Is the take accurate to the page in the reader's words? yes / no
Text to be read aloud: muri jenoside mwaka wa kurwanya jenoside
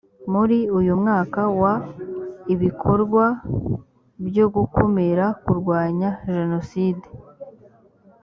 no